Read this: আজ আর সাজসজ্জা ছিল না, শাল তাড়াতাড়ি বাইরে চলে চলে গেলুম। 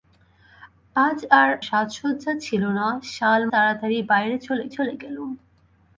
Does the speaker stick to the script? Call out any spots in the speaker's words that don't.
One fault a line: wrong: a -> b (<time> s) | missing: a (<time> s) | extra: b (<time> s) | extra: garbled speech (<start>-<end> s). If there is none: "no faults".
no faults